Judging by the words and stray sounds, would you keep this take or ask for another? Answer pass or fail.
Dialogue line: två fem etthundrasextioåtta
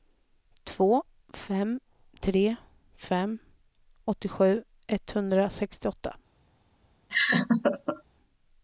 fail